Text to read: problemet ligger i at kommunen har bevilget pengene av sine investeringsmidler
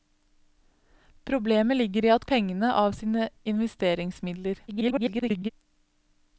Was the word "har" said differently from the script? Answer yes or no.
yes